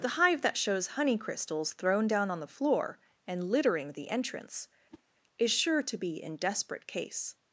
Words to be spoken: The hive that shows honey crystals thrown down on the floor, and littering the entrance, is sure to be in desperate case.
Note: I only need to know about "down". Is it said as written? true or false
true